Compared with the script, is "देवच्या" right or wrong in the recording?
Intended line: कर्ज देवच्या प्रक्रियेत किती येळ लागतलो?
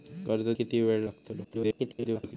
wrong